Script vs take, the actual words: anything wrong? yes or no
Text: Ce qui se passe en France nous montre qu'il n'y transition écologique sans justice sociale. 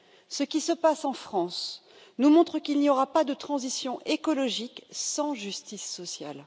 yes